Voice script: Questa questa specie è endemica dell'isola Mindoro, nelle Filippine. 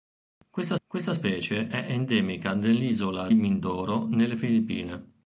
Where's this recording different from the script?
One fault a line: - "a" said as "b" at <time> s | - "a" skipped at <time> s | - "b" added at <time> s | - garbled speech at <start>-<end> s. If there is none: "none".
none